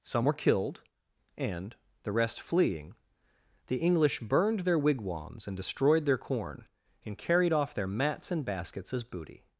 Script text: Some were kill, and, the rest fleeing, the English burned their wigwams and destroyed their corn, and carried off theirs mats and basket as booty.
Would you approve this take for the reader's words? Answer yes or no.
no